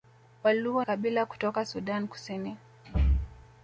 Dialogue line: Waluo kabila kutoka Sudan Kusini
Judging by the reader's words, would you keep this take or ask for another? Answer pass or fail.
pass